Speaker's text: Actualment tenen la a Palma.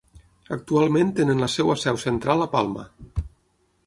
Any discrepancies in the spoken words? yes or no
yes